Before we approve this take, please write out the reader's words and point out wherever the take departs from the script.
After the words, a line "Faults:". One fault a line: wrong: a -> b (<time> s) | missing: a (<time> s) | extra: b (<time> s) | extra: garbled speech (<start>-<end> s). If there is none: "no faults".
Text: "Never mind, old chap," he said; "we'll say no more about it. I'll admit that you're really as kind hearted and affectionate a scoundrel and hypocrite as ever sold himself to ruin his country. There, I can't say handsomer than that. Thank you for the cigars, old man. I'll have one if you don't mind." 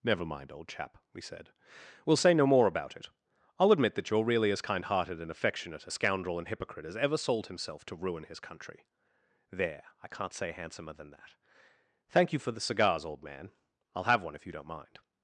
"Never mind, old chap," we said; "we'll say no more about it. I'll admit that you're really as kind hearted and affectionate a scoundrel and hypocrite as ever sold himself to ruin his country. There, I can't say handsomer than that. Thank you for the cigars, old man. I'll have one if you don't mind."
Faults:
wrong: he -> we (1.1 s)